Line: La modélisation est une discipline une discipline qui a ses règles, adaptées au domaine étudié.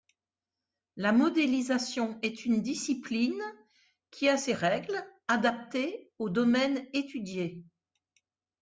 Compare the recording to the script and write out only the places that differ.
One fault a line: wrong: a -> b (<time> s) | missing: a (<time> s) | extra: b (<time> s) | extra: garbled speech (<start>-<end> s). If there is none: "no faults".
missing: une discipline (3.4 s)